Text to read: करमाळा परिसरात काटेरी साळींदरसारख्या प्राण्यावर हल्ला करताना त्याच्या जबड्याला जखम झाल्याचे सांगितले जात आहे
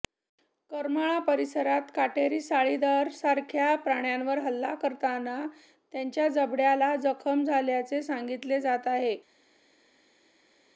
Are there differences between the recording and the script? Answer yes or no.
no